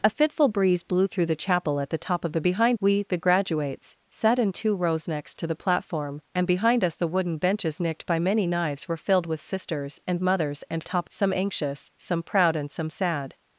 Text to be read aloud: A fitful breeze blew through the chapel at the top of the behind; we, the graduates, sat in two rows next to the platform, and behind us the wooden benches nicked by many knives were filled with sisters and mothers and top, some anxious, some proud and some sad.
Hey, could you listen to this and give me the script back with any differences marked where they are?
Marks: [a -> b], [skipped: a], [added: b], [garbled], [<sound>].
A fitful breeze blew through the chapel at the top of the behind; we, the graduates, sat in two rows next to the platform, and behind us the wooden benches nicked by many knives were filled with sisters and mothers and top, some anxious, some proud and some sad.